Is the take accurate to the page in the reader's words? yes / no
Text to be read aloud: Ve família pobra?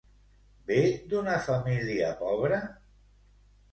no